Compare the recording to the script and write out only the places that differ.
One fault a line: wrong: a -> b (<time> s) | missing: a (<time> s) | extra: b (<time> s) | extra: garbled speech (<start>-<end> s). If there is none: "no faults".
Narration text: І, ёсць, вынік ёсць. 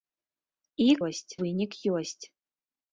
no faults